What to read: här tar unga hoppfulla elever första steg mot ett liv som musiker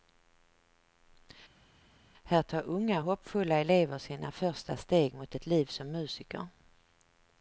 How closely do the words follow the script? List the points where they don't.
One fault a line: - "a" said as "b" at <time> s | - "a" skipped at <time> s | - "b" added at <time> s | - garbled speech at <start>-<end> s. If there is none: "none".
- "sina" added at 4.0 s